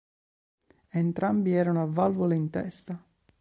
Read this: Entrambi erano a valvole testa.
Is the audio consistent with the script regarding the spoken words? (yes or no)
no